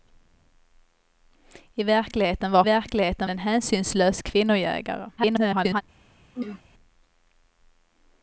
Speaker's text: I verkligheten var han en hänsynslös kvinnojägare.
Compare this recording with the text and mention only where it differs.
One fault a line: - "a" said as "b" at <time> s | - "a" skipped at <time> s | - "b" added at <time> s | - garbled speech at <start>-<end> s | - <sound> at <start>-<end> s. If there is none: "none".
- "han" said as "verkligheten" at 2.6 s
- garbled speech at 5.2-5.8 s
- throat clearing at 6.3-6.6 s